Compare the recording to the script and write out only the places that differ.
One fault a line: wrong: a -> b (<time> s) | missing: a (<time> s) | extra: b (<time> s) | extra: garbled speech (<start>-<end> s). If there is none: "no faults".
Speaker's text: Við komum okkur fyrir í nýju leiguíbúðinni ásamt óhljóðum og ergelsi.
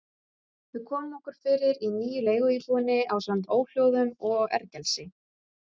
no faults